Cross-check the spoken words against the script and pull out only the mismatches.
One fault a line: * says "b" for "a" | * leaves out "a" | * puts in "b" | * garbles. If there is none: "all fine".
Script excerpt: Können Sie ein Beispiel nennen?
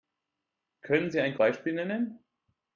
all fine